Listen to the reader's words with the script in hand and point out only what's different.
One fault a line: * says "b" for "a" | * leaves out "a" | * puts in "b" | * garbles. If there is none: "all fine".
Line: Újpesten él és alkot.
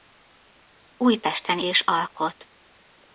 * leaves out "él"